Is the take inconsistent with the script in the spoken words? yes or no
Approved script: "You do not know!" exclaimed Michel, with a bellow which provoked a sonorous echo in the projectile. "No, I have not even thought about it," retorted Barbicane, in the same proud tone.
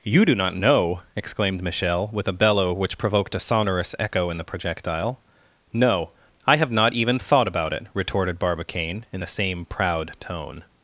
no